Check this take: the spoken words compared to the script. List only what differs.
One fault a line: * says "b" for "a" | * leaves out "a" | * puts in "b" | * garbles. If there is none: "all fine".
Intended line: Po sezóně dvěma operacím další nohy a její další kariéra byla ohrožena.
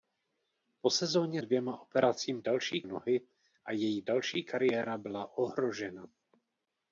all fine